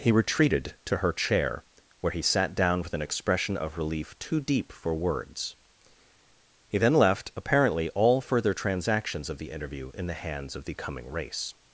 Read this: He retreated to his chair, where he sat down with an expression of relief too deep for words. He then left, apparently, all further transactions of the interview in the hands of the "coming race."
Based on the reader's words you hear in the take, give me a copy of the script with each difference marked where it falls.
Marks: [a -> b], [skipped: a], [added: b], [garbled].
He retreated to [his -> her] chair, where he sat down with an expression of relief too deep for words. He then left, apparently, all further transactions of the interview in the hands of the "coming race."